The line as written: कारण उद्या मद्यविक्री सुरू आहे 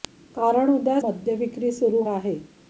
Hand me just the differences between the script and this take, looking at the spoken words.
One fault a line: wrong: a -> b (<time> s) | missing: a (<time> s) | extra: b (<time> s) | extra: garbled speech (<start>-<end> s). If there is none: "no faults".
no faults